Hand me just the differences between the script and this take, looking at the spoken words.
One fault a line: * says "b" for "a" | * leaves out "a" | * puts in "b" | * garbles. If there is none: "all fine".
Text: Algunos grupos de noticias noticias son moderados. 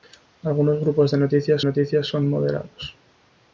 all fine